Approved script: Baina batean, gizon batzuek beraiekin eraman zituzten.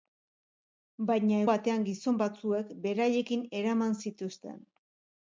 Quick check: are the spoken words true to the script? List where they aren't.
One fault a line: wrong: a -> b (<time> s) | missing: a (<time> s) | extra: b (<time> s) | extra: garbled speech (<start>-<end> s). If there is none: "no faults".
no faults